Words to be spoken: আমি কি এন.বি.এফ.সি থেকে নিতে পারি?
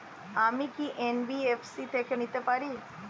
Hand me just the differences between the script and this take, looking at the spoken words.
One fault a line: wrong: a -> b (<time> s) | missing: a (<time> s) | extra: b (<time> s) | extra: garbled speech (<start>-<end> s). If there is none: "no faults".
no faults